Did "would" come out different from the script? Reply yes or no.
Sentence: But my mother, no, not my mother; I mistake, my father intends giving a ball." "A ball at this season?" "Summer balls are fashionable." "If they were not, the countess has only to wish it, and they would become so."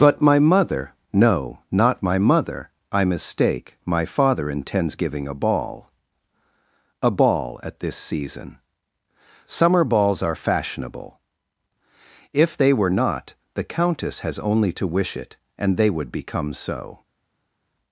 no